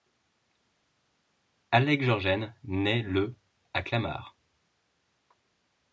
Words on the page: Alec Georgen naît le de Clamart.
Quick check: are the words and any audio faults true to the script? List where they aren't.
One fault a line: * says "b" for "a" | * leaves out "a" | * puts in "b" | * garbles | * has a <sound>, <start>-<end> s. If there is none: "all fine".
* says "à" for "de"